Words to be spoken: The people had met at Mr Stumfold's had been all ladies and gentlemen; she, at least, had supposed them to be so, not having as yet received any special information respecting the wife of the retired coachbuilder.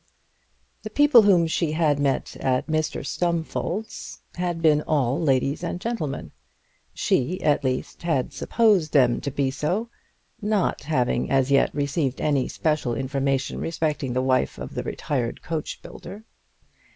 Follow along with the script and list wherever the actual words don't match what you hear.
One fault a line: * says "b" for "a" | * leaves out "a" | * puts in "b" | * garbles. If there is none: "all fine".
* puts in "whom she"